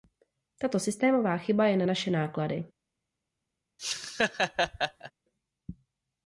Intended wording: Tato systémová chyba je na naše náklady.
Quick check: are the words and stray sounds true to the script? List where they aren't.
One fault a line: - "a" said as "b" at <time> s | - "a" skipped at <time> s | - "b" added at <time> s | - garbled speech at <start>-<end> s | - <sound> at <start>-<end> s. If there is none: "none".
- laugh at 3.8-5.1 s